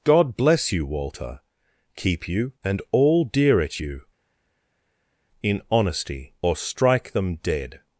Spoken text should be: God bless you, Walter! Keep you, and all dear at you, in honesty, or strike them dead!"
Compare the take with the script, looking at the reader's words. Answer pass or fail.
pass